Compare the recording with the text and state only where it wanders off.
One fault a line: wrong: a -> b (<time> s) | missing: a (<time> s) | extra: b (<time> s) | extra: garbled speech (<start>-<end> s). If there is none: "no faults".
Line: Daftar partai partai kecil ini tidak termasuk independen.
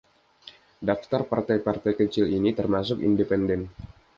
missing: tidak (2.6 s)